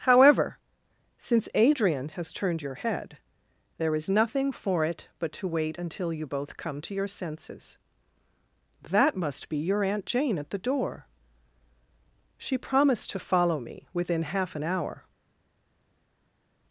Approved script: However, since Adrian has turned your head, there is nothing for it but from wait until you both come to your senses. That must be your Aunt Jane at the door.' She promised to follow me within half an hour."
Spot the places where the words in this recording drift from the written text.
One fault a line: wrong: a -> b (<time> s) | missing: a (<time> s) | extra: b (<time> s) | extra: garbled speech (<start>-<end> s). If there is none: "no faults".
wrong: from -> to (5.3 s)